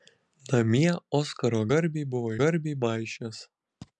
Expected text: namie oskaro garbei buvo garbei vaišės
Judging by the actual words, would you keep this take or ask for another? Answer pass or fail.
pass